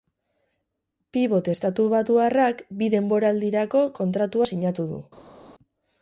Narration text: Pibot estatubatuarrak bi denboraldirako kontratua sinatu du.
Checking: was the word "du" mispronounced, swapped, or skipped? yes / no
no